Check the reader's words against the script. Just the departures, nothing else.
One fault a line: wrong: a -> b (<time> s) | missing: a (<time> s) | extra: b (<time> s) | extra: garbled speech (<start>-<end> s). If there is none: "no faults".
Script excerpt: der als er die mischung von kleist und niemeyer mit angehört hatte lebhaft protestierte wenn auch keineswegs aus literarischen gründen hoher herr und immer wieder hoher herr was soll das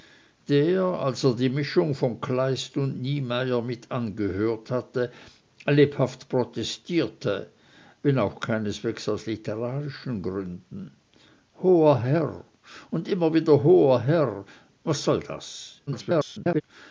extra: garbled speech (15.9-16.6 s)